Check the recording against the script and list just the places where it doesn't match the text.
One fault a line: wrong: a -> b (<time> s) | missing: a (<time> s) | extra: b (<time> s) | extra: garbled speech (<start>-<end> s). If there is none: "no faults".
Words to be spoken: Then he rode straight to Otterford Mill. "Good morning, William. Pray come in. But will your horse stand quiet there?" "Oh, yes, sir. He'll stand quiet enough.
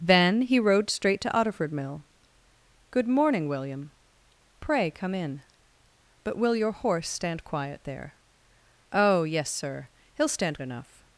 missing: quiet (10.6 s)